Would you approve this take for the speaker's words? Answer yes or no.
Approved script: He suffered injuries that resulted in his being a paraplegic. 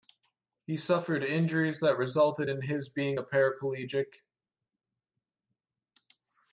yes